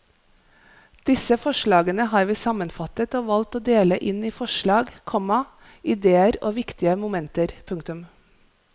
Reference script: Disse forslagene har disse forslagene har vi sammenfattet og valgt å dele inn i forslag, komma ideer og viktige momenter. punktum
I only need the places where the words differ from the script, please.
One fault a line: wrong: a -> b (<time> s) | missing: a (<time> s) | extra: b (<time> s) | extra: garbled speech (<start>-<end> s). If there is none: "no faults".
missing: disse forslagene har (2.2 s)